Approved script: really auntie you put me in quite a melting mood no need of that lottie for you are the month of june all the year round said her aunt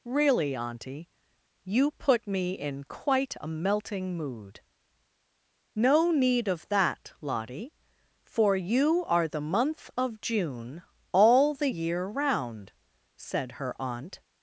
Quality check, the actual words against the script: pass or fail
pass